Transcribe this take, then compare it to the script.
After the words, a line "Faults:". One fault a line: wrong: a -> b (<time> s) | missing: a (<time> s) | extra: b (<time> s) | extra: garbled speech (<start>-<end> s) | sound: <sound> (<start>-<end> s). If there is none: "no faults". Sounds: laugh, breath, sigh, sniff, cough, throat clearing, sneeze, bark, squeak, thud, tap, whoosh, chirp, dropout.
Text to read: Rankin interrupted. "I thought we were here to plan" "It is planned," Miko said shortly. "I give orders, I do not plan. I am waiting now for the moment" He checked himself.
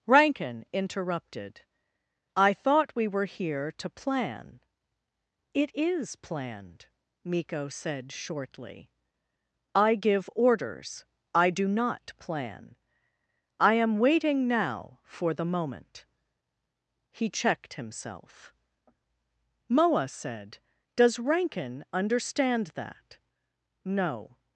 Rankin interrupted. "I thought we were here to plan" "It is planned," Miko said shortly. "I give orders, I do not plan. I am waiting now for the moment" He checked himself. Moa said, "Does Rankin understand that no
Faults:
extra: Moa said Does Rankin understand that no (19.7 s)